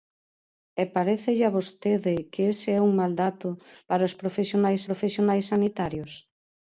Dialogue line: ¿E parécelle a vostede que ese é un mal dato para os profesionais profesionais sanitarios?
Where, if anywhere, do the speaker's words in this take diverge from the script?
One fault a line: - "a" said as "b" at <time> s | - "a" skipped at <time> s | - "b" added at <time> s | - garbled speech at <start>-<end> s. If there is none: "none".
none